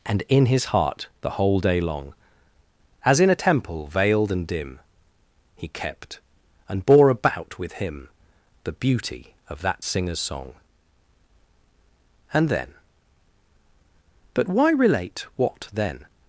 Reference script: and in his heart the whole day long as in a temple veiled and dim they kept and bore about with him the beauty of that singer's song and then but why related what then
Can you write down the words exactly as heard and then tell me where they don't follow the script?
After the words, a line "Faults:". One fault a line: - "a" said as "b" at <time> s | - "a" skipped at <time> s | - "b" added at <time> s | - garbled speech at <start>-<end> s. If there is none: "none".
and in his heart the whole day long as in a temple veiled and dim he kept and bore about with him the beauty of that singer's song and then but why relate what then
Faults:
- "they" said as "he" at 5.5 s
- "related" said as "relate" at 14.7 s